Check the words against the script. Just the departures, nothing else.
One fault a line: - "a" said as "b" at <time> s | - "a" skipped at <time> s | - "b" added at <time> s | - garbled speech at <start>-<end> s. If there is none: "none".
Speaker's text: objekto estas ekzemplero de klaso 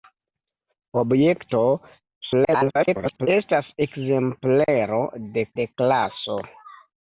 - garbled speech at 2.2-3.3 s
- "de" added at 5.6 s